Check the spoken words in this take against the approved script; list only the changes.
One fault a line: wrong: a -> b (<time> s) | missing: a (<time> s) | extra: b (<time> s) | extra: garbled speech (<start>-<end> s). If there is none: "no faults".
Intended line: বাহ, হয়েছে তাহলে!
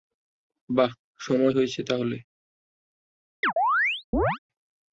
extra: সময় (1.2 s)